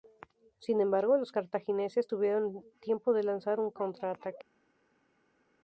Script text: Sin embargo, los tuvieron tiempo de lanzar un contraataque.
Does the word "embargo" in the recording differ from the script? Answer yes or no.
no